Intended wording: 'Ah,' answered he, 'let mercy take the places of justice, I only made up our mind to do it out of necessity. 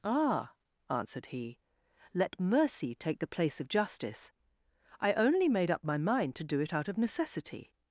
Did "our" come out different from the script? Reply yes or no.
yes